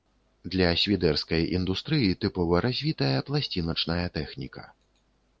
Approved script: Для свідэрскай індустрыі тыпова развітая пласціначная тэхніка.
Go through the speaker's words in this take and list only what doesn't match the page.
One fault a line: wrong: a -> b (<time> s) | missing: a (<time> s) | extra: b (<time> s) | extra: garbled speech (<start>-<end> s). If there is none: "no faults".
no faults